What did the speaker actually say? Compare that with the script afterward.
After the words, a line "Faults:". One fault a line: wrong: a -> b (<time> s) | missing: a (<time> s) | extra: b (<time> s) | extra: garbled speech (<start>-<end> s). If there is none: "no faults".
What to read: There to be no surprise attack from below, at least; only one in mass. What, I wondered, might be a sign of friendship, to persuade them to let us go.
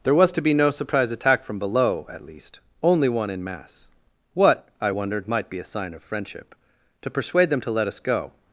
There was to be no surprise attack from below, at least; only one in mass. What, I wondered, might be a sign of friendship, to persuade them to let us go.
Faults:
extra: was (0.1 s)